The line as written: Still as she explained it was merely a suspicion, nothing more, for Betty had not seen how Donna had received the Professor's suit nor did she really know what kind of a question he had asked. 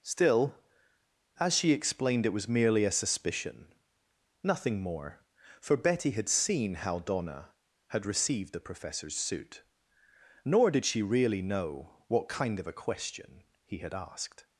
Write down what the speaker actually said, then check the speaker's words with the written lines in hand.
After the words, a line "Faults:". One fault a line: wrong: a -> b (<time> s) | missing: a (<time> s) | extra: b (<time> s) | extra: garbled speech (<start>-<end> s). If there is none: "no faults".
Still as she explained it was merely a suspicion, nothing more, for Betty had seen how Donna had received the Professor's suit nor did she really know what kind of a question he had asked.
Faults:
missing: not (6.3 s)